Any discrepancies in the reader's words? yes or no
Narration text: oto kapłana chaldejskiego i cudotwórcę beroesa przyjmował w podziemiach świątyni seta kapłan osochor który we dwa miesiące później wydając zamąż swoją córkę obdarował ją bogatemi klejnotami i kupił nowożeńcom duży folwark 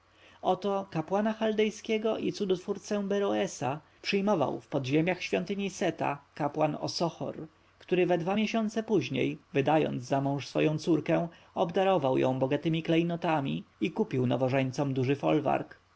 no